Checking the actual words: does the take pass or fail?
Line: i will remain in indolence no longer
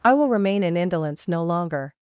pass